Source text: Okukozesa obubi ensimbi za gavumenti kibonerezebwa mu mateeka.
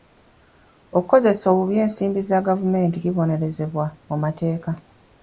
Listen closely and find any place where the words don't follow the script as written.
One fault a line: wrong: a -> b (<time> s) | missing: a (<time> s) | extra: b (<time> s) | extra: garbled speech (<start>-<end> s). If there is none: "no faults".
no faults